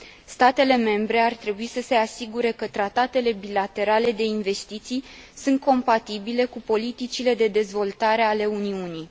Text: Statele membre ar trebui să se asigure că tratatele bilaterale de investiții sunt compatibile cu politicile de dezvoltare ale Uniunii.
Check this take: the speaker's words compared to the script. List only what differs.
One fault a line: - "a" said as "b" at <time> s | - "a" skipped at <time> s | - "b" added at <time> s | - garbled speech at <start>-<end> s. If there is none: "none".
none